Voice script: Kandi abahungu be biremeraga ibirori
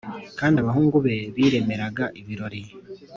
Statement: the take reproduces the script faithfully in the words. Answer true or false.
true